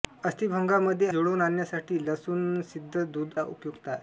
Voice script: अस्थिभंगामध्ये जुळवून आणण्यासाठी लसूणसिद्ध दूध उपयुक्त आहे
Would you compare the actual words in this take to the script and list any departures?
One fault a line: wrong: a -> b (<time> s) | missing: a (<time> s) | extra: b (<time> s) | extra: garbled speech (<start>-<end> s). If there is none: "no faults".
no faults